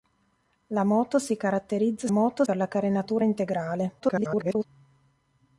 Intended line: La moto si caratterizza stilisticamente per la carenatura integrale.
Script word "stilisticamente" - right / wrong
wrong